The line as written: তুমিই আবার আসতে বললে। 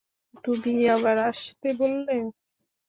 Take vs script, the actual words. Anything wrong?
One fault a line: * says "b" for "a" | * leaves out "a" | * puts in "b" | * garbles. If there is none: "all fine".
all fine